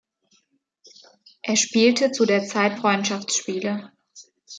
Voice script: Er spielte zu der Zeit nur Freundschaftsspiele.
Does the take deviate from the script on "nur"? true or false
true